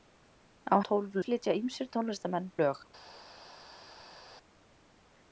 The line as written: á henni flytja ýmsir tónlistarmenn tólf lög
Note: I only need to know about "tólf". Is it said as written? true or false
false